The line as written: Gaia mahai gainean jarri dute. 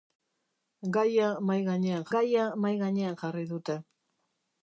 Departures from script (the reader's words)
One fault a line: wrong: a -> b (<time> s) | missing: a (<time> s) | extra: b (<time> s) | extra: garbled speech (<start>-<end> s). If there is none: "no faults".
extra: gaia mahai gainean (2.1 s)